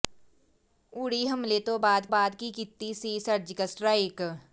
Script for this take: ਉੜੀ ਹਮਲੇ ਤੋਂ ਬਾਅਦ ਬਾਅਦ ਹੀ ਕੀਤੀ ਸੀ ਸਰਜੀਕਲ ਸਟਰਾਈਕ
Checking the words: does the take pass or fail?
pass